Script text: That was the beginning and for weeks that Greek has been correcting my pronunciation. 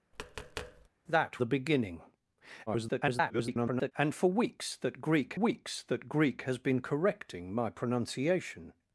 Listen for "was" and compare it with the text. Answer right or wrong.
wrong